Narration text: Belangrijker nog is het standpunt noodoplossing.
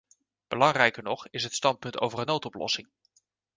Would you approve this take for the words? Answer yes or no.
no